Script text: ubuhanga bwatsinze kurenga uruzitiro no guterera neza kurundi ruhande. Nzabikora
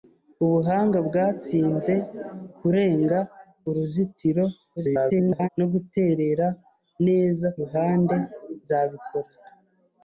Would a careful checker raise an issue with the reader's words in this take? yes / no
yes